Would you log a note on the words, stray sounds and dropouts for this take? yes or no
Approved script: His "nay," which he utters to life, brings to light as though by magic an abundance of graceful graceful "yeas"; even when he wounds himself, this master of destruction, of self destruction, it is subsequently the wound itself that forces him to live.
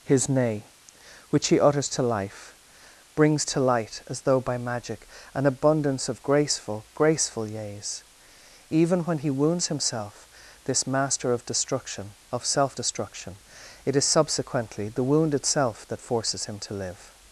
no